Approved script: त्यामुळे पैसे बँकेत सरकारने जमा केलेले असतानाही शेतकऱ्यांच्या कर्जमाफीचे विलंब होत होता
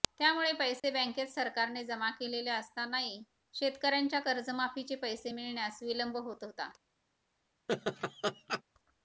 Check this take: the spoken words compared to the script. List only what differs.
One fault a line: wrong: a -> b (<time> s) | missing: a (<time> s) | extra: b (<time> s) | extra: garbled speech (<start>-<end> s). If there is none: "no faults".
extra: पैसे मिळण्यास (5.0 s)